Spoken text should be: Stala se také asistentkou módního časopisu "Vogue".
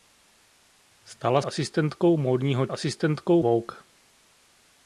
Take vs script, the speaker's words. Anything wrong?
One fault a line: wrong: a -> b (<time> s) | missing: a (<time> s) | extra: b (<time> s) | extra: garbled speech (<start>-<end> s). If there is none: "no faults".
missing: se také (1.4 s)
wrong: časopisu -> asistentkou (2.7 s)